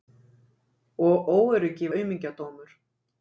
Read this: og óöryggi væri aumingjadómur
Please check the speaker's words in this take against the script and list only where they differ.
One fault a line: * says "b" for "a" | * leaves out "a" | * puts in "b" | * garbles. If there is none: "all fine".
* leaves out "væri"